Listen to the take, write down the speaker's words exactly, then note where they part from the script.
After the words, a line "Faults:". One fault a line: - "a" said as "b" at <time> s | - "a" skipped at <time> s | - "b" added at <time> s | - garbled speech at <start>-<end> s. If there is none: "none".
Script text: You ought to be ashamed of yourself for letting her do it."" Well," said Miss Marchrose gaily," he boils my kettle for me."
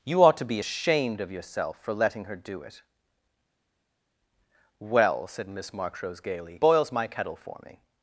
You ought to be ashamed of yourself for letting her do it."" Well," said Miss Marchrose gaily," boils my kettle for me."
Faults:
- "he" skipped at 6.6 s